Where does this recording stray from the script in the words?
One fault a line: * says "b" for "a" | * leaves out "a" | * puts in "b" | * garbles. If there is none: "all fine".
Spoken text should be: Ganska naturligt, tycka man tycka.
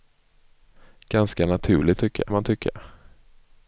all fine